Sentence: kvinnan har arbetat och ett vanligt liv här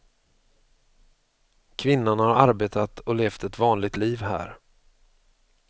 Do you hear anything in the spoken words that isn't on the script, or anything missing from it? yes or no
yes